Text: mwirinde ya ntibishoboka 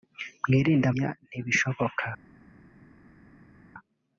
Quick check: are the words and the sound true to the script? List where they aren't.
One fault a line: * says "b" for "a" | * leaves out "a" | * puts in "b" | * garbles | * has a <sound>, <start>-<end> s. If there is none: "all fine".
all fine